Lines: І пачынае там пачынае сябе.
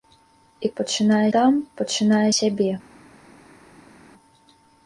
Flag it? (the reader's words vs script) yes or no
no